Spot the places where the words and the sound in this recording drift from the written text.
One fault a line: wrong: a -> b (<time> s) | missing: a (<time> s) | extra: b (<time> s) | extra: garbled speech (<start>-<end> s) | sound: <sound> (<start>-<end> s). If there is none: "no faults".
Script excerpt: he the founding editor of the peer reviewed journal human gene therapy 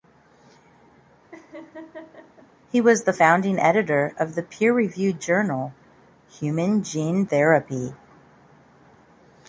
sound: laugh (1.3-2.5 s)
extra: was (2.8 s)